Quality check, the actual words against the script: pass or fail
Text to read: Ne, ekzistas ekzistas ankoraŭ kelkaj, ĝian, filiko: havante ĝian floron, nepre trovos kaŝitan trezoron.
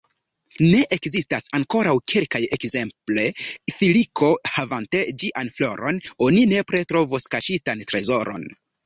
fail